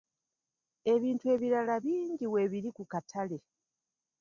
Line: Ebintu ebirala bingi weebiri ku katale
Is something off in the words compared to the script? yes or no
no